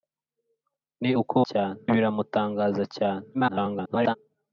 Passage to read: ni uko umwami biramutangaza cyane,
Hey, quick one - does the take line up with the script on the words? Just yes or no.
no